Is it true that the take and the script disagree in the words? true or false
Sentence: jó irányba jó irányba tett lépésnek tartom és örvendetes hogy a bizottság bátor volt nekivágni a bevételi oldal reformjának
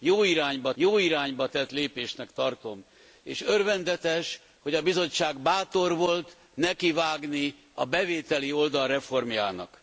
false